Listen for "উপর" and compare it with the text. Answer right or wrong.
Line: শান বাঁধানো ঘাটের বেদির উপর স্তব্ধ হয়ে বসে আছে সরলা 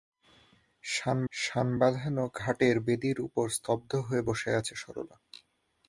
right